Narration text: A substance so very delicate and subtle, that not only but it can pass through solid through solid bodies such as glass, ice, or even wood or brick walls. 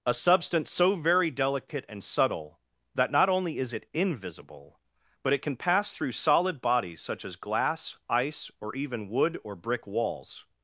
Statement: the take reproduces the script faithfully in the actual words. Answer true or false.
false